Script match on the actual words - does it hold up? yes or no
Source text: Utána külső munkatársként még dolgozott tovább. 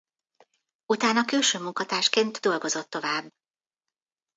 no